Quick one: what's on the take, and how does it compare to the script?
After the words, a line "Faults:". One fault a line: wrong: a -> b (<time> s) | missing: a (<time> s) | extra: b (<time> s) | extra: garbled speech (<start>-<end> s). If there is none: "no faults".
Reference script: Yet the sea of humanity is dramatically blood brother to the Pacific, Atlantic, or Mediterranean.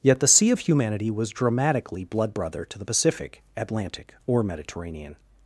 Yet the sea of humanity was dramatically blood brother to the Pacific, Atlantic, or Mediterranean.
Faults:
wrong: is -> was (1.1 s)